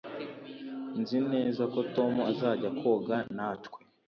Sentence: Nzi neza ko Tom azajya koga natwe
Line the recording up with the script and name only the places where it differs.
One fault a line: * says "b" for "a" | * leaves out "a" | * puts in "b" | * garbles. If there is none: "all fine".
all fine